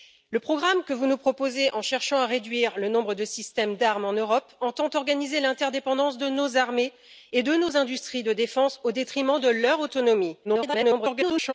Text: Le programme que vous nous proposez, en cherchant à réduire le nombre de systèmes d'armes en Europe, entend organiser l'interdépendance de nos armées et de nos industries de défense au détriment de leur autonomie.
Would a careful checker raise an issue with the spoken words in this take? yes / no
yes